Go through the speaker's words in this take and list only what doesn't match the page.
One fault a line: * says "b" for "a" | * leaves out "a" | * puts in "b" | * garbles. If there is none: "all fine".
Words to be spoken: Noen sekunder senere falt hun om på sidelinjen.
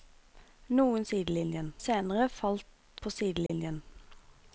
* says "sidelinjen" for "sekunder"
* leaves out "hun om"